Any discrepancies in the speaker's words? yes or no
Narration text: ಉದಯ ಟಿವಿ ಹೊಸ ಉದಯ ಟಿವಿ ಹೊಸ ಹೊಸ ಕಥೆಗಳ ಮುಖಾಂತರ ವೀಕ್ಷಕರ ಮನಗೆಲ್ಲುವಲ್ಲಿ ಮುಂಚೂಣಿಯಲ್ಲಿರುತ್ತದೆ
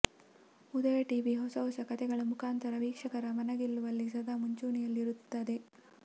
yes